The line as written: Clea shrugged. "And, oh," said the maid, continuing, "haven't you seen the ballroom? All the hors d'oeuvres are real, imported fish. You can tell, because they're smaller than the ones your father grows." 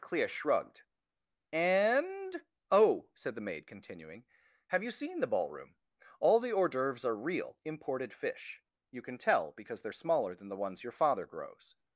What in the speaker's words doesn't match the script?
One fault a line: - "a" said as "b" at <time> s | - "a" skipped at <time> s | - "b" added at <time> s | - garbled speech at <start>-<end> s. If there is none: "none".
- "haven't" said as "have" at 4.7 s